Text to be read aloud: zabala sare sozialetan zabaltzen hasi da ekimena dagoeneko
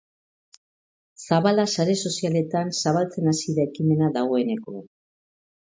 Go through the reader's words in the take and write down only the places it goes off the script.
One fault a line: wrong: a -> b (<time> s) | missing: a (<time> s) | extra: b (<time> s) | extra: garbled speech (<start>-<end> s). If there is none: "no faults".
no faults